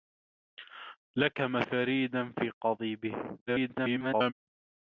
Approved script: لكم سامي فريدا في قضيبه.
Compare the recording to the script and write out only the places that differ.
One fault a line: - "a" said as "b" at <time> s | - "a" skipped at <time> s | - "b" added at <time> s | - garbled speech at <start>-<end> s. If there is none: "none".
- "سامي" skipped at 1.6 s
- garbled speech at 3.5-4.3 s